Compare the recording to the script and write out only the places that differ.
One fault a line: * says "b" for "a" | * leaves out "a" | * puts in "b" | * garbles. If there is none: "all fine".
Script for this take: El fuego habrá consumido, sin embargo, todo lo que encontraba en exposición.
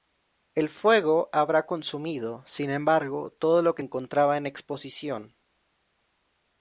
all fine